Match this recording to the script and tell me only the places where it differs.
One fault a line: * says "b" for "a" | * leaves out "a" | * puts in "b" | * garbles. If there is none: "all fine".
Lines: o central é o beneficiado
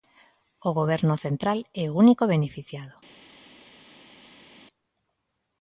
* puts in "goberno"
* puts in "único"